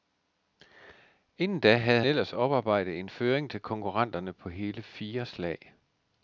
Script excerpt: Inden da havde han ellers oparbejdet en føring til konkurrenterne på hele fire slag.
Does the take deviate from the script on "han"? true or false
true